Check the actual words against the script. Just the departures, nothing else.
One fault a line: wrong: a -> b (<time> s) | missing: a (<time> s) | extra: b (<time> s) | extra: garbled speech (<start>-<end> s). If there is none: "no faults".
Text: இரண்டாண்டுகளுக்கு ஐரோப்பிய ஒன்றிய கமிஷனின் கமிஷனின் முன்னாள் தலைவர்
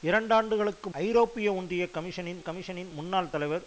no faults